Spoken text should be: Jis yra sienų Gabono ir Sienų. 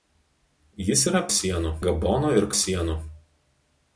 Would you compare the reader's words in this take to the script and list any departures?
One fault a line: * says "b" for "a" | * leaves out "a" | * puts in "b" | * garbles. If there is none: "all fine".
all fine